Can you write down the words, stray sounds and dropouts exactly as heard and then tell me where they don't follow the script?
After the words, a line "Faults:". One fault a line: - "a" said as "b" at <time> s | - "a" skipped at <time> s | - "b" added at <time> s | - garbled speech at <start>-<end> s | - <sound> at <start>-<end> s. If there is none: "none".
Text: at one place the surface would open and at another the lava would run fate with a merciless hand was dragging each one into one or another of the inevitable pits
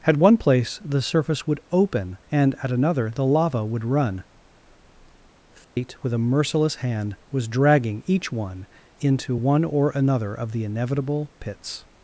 at one place the surface would open and at another the lava would run fate with a merciless hand was dragging each one into one or another of the inevitable pits
Faults:
- dropout at 5.6-5.8 s